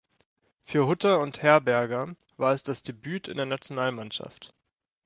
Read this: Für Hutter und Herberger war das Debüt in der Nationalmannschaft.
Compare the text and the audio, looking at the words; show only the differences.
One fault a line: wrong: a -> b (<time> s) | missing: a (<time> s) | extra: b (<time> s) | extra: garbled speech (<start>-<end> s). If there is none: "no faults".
extra: es (2.5 s)